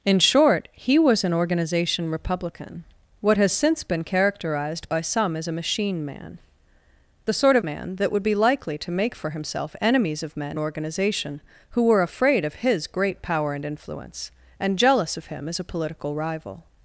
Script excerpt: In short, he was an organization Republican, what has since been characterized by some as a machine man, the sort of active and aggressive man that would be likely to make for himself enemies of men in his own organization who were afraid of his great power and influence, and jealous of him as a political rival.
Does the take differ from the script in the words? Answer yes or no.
yes